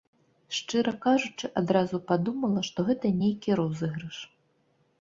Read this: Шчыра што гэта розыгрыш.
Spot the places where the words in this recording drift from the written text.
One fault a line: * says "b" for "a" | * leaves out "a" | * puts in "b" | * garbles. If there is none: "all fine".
* puts in "кажучы адразу падумала"
* puts in "нейкі"